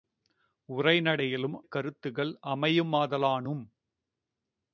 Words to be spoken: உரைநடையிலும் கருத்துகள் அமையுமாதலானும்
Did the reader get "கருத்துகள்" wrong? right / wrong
right